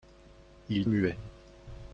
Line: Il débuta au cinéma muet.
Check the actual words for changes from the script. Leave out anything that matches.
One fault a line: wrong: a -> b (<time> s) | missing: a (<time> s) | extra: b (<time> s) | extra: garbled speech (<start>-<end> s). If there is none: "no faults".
missing: débuta au cinéma (0.9 s)